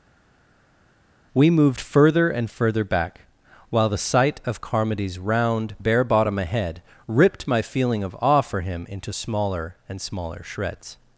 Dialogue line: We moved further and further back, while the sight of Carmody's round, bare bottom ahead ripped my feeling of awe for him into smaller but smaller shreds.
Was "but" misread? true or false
true